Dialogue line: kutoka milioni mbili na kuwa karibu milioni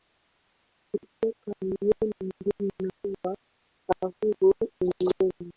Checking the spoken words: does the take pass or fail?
pass